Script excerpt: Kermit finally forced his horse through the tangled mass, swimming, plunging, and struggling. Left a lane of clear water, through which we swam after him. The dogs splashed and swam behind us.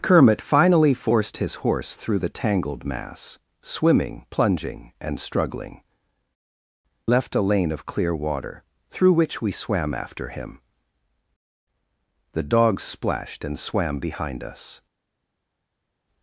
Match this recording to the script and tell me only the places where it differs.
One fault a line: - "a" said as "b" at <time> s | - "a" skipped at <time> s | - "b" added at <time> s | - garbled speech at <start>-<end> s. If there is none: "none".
none